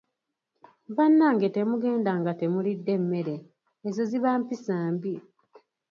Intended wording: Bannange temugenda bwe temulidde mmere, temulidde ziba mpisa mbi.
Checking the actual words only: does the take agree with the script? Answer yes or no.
no